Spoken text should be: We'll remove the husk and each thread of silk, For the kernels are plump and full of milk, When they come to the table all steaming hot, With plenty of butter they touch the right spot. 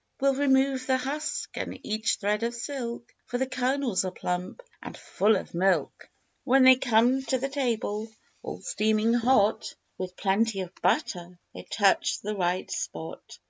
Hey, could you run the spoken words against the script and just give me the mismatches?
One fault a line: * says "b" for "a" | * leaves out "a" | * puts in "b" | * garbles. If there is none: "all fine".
all fine